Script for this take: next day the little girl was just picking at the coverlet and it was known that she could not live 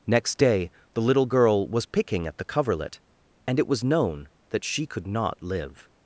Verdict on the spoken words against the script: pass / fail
fail